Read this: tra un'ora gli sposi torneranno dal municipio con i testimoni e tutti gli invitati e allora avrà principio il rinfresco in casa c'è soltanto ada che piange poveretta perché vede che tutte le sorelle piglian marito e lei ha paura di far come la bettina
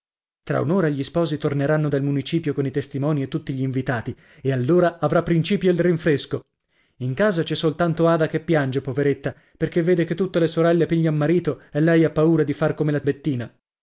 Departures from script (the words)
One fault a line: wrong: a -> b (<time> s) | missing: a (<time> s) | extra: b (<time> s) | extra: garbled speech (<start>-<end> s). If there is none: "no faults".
no faults